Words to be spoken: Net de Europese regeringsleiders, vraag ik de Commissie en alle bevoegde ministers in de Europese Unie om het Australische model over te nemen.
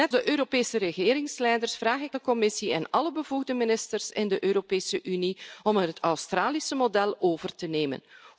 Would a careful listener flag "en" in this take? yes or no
no